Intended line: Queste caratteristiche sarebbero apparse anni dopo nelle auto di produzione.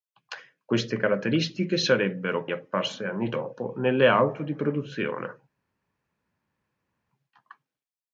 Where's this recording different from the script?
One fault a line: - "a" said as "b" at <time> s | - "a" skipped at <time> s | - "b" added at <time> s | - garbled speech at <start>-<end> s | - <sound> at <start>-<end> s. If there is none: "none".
none